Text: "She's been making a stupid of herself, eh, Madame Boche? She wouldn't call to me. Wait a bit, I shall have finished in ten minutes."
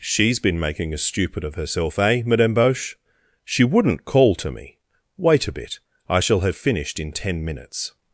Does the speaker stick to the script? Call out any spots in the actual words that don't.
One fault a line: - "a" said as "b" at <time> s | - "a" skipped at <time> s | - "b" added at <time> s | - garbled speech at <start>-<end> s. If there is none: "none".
none